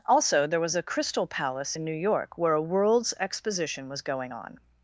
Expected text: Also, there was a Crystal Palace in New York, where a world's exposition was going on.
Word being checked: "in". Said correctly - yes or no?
yes